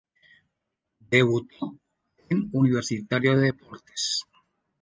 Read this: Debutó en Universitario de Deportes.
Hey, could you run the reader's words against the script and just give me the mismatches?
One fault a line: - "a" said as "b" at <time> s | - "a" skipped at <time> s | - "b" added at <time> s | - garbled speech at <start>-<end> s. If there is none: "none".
none